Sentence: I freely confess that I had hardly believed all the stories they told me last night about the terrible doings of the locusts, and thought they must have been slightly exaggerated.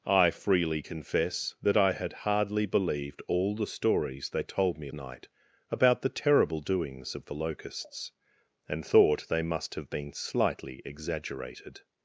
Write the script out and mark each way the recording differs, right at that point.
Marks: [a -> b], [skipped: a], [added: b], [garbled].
I freely confess that I had hardly believed all the stories they told me [skipped: last] night about the terrible doings of the locusts, and thought they must have been slightly exaggerated.